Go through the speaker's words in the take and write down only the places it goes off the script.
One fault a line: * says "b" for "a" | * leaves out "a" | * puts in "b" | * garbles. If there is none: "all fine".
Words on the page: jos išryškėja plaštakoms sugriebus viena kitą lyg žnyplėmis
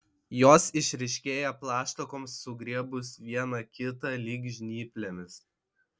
all fine